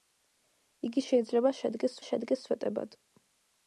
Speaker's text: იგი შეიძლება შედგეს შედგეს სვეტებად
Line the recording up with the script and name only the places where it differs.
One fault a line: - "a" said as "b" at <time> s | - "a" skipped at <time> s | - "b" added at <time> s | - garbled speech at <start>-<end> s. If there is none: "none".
none